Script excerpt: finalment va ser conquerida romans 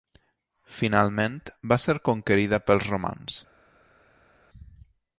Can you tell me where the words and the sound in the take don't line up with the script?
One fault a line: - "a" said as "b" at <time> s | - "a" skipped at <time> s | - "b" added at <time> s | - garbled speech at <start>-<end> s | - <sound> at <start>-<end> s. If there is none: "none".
- "pels" added at 2.7 s